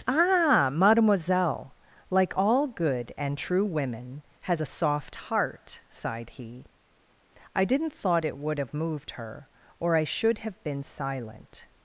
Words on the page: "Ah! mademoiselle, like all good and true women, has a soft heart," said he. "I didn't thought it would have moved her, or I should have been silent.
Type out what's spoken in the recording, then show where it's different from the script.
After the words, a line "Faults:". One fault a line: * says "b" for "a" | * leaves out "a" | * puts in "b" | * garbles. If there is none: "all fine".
"Ah! mademoiselle, like all good and true women, has a soft heart," sighed he. "I didn't thought it would have moved her, or I should have been silent.
Faults:
* says "sighed" for "said"